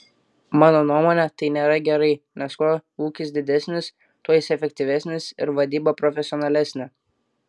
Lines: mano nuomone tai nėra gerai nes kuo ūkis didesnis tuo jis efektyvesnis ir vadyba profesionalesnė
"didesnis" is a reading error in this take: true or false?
false